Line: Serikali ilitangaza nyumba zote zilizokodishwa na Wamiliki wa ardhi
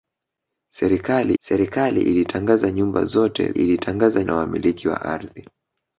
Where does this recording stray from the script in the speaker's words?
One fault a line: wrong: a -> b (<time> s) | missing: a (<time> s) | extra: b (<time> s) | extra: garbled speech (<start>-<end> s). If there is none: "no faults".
extra: serikali (1.4 s)
wrong: zilizokodishwa -> ilitangaza (3.5 s)